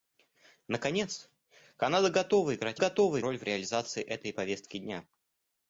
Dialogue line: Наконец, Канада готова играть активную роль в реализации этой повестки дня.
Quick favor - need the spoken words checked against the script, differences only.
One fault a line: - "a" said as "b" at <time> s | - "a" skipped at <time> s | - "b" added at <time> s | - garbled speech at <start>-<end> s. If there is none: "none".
- "активную" said as "готова" at 2.8 s